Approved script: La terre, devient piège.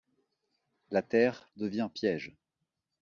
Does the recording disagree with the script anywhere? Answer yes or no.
no